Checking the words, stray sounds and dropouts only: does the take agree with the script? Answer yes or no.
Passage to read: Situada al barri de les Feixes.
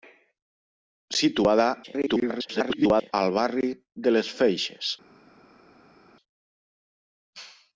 no